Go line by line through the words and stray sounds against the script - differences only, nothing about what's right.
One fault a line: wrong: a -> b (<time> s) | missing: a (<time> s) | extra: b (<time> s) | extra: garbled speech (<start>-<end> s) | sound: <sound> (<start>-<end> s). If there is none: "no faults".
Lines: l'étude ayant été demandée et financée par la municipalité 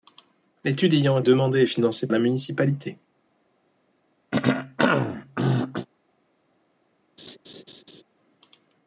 missing: été (1.2 s)
missing: par (2.1 s)
sound: throat clearing (4.3-5.9 s)
sound: laugh (7.2-8.0 s)